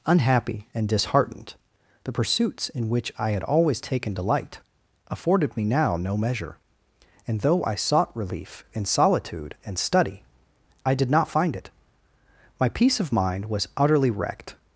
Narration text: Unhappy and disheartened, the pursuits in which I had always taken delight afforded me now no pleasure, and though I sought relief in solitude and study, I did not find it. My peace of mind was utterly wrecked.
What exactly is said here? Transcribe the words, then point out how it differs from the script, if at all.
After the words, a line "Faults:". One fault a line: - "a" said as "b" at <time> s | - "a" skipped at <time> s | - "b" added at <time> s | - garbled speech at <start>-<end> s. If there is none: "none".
Unhappy and disheartened, the pursuits in which I had always taken delight afforded me now no measure, and though I sought relief in solitude and study, I did not find it. My peace of mind was utterly wrecked.
Faults:
- "pleasure" said as "measure" at 6.2 s